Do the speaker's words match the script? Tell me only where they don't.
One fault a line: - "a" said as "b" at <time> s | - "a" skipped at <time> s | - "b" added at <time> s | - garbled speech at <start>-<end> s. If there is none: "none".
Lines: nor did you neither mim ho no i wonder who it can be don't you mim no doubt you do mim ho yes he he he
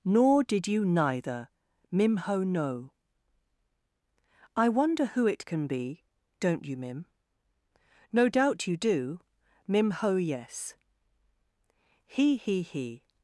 none